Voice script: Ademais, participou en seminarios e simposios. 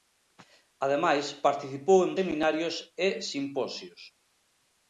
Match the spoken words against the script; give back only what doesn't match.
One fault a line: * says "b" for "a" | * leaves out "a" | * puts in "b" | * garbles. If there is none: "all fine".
all fine